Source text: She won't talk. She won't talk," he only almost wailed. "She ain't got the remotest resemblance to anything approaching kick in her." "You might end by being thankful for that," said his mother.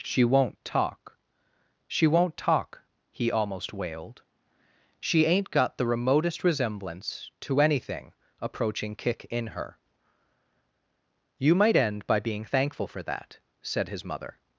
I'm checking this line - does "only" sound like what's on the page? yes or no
no